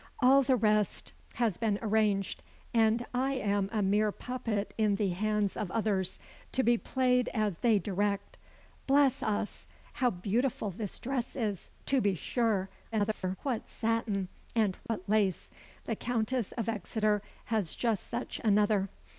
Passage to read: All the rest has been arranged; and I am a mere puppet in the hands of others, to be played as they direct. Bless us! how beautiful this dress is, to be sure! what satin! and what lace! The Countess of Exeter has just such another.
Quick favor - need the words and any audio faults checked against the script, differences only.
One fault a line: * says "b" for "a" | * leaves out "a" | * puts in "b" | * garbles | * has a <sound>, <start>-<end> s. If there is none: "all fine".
* garbles
* has a dropout, 14.9-14.9 s